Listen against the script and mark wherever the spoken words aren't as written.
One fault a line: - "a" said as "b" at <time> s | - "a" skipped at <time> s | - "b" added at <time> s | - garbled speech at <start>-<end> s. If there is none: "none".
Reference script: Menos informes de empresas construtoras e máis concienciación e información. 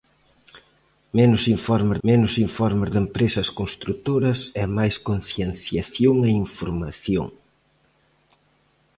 - "menos informes" added at 2.1 s